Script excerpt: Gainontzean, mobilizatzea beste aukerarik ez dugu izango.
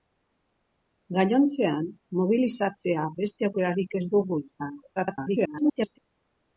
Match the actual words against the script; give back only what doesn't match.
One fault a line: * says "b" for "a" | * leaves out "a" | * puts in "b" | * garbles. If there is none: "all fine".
* garbles